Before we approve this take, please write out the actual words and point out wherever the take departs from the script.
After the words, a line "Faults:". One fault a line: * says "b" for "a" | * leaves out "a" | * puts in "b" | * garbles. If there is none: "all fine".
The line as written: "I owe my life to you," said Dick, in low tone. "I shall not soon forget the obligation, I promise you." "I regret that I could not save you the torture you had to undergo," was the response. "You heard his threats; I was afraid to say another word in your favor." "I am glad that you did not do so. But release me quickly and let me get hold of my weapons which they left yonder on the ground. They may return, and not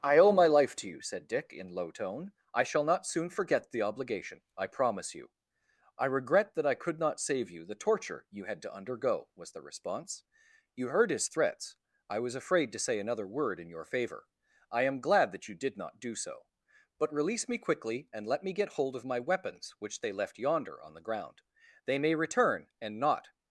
"I owe my life to you," said Dick, in low tone. "I shall not soon forget the obligation, I promise you." "I regret that I could not save you the torture you had to undergo," was the response. "You heard his threats; I was afraid to say another word in your favor." "I am glad that you did not do so. But release me quickly and let me get hold of my weapons which they left yonder on the ground. They may return, and not
Faults:
all fine